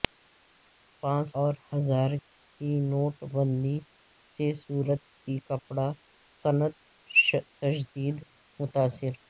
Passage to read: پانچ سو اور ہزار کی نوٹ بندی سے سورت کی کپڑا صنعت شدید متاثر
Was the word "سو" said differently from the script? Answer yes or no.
yes